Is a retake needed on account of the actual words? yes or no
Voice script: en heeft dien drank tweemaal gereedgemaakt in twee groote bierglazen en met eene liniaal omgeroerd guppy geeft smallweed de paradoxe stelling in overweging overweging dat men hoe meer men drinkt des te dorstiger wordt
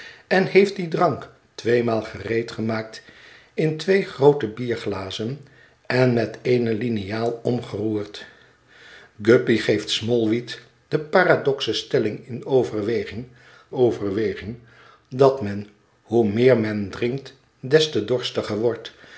no